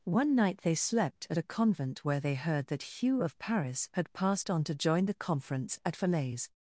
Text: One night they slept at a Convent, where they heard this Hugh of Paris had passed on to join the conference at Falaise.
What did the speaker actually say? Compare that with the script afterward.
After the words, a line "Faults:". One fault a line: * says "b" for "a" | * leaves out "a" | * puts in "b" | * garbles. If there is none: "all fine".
One night they slept at a Convent, where they heard that Hugh of Paris had passed on to join the conference at Falaise.
Faults:
* says "that" for "this"